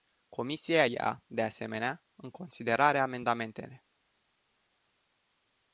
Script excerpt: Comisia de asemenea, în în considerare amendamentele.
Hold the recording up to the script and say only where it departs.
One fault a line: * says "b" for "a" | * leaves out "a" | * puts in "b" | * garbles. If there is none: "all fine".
* puts in "ia"
* leaves out "în"